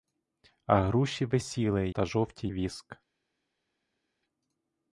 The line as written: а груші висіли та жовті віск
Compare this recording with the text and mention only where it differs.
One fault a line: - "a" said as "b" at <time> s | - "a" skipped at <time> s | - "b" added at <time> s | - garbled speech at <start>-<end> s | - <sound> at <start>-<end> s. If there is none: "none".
none